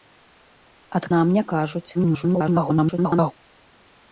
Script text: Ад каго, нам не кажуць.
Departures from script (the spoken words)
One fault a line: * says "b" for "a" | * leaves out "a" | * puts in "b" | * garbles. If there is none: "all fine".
* leaves out "каго"
* garbles